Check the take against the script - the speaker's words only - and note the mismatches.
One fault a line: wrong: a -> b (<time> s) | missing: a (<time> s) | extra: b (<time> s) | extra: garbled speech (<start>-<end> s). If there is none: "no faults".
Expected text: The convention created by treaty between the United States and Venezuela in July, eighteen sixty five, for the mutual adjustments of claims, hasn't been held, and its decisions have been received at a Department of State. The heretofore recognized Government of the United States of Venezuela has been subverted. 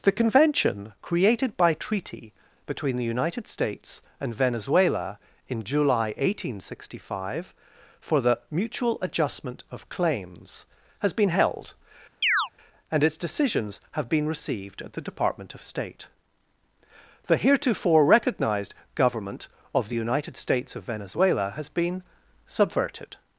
wrong: adjustments -> adjustment (9.0 s)
wrong: hasn't -> has (11.0 s)
wrong: a -> the (14.9 s)